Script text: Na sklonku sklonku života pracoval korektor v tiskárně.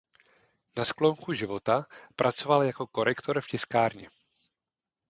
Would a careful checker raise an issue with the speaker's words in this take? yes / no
yes